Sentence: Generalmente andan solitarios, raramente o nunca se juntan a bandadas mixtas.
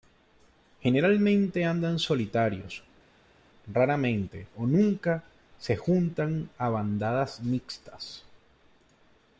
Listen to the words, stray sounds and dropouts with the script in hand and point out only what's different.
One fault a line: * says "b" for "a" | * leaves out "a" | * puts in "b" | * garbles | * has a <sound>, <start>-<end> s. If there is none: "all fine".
all fine